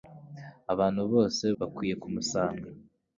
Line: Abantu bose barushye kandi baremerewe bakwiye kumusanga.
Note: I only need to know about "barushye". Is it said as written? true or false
false